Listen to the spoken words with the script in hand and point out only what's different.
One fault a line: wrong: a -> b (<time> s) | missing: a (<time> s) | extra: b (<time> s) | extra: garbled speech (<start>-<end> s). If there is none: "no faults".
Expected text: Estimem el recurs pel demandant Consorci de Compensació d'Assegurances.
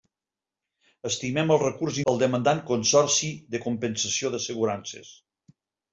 no faults